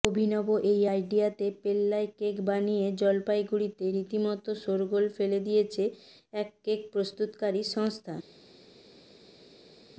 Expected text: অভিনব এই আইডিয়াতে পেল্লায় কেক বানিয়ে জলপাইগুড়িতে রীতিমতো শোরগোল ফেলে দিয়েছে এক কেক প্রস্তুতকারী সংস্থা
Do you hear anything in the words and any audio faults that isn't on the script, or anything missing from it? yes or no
no